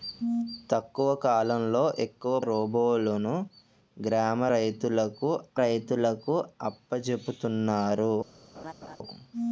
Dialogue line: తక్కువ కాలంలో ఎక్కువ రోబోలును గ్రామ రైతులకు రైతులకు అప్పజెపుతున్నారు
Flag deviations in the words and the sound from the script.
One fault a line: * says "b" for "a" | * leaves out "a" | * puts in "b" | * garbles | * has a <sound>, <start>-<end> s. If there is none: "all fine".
* has a laugh, 8.5-9.0 s